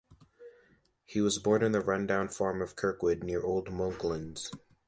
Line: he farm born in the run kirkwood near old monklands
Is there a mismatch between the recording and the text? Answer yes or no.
yes